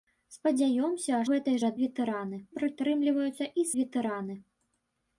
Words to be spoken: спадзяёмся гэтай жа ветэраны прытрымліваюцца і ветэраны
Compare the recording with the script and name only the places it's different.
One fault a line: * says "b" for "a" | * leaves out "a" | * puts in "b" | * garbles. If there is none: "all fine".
all fine